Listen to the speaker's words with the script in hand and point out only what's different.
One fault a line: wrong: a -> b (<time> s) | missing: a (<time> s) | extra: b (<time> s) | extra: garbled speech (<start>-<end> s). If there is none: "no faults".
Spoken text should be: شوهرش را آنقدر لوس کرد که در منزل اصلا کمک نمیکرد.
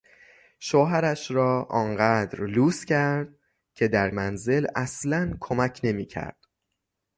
no faults